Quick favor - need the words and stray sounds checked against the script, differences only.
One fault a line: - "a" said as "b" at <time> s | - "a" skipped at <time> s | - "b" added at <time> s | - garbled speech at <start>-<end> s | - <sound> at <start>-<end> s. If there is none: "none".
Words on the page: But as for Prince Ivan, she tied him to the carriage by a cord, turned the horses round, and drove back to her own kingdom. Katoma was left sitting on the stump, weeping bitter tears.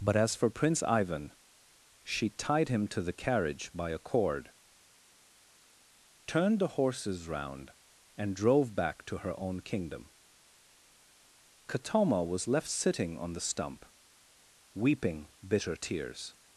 none